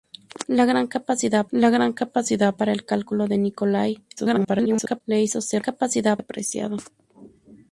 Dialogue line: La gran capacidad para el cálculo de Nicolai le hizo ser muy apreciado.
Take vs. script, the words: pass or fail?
fail